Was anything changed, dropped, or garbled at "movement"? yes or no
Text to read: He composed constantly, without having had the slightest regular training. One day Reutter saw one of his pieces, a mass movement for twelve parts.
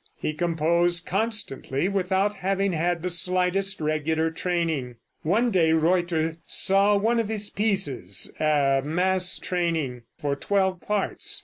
yes